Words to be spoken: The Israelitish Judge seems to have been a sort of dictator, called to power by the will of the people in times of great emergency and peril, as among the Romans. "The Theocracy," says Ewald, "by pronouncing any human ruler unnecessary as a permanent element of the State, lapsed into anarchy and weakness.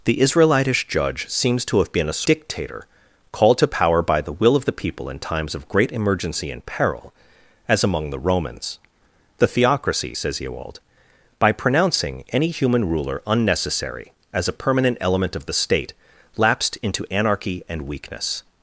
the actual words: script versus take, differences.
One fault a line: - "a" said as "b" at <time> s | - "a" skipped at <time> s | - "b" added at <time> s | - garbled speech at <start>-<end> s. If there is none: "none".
- "sort of" skipped at 2.2 s